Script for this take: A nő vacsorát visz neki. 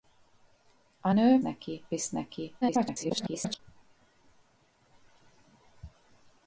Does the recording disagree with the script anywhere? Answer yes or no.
yes